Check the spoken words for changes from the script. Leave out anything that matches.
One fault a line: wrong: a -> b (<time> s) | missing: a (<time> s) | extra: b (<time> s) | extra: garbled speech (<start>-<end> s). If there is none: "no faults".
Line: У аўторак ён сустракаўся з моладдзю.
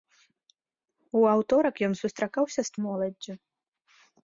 no faults